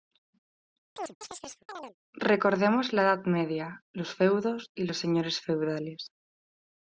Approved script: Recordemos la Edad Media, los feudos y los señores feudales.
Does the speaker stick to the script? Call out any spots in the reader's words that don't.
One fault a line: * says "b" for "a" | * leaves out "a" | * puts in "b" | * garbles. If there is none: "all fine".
all fine